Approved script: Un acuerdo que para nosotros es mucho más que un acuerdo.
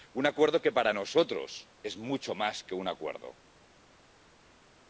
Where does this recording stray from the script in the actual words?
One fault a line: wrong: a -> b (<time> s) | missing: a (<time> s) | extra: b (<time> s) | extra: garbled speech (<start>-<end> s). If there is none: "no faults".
no faults